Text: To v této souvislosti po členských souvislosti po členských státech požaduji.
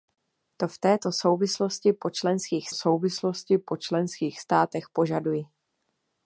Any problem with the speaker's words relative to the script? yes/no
no